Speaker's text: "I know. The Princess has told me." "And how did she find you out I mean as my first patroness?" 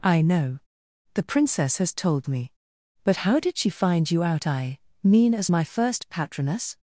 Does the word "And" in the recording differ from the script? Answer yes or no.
yes